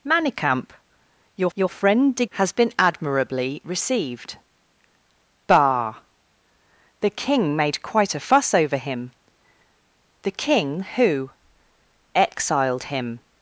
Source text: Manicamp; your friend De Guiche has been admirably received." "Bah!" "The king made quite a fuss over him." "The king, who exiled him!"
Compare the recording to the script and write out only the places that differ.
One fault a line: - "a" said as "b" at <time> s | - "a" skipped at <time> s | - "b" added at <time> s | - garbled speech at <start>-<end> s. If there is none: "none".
- "your" added at 1.5 s
- "Guiche" skipped at 2.2 s